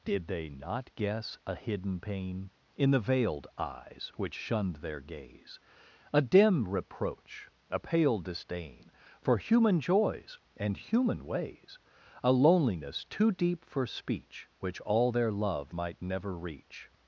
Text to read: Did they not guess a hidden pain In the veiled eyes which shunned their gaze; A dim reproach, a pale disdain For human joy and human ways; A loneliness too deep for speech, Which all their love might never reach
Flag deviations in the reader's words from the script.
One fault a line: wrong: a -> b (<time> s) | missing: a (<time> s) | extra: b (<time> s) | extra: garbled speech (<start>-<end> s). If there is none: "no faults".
wrong: joy -> joys (9.8 s)